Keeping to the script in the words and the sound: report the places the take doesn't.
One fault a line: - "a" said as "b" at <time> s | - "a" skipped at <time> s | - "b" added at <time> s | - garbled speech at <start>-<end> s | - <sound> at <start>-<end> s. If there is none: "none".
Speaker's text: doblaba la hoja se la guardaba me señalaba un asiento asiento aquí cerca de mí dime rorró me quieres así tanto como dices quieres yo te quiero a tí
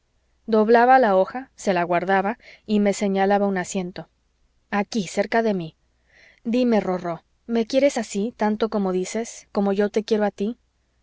- "y" added at 2.6 s
- "asiento" skipped at 4.1 s
- "quieres" said as "como" at 9.5 s